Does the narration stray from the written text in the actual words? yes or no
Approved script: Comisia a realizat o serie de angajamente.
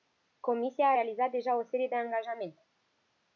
yes